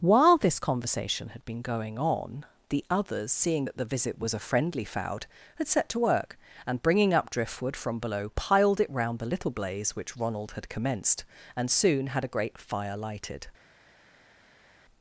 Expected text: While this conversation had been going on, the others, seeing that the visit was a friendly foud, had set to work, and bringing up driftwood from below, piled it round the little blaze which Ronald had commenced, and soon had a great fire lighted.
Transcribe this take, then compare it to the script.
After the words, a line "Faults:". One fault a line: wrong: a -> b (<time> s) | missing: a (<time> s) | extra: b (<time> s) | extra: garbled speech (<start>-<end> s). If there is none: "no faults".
While this conversation had been going on, the others, seeing that the visit was a friendly foud, had set to work, and bringing up driftwood from below, piled it round the little blaze which Ronald had commenced, and soon had a great fire lighted.
Faults:
no faults